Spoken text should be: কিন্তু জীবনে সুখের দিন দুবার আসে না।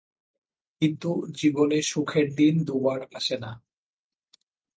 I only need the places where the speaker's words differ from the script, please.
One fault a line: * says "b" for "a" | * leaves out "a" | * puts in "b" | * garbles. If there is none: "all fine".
all fine